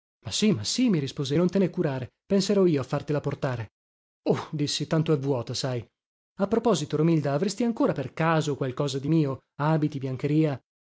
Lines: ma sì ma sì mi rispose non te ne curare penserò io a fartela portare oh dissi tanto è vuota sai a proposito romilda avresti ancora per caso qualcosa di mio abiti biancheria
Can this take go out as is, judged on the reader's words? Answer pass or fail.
pass